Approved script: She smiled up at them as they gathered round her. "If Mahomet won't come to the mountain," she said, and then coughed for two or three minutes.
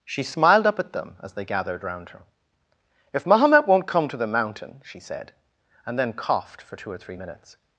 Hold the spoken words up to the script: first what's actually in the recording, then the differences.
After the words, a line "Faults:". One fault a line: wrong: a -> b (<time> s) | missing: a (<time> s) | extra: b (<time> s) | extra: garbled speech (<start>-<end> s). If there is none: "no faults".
She smiled up at them as they gathered round her. "If Mahomet won't come to the mountain," she said, and then coughed for two or three minutes.
Faults:
no faults